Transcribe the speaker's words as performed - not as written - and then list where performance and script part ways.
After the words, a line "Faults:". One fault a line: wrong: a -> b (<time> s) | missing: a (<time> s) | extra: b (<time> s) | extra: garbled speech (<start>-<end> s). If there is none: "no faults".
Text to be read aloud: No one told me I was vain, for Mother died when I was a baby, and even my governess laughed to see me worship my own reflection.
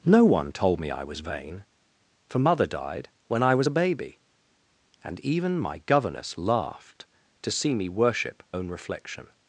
No one told me I was vain, for Mother died when I was a baby, and even my governess laughed to see me worship own reflection.
Faults:
missing: my (8.4 s)